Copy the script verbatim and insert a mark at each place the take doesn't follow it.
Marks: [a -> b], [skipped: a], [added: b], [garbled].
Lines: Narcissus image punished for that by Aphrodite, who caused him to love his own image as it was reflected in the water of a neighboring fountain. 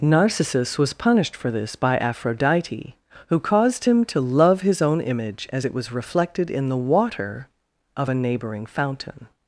Narcissus [image -> was] punished for [that -> this] by Aphrodite, who caused him to love his own image as it was reflected in the water of a neighboring fountain.